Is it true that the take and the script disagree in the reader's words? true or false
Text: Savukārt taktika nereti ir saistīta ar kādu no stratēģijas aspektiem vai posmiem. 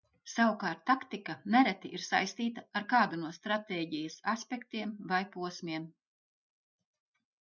false